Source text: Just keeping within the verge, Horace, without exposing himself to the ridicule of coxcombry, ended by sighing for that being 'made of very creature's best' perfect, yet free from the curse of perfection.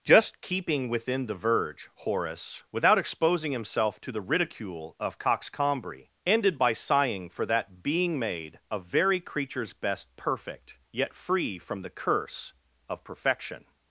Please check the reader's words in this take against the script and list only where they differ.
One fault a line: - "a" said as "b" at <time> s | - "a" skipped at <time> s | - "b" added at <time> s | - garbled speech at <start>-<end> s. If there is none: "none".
none